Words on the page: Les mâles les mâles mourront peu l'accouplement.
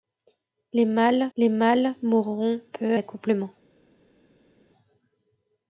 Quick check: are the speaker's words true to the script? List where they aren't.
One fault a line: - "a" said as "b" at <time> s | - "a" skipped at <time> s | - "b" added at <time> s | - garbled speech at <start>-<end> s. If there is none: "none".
none